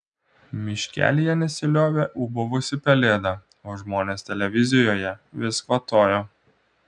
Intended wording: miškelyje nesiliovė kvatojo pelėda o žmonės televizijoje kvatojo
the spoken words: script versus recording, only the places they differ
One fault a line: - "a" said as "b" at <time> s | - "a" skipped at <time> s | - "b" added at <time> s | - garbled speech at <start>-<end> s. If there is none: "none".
- "kvatojo" said as "ūbavusi" at 2.3 s
- "vis" added at 5.4 s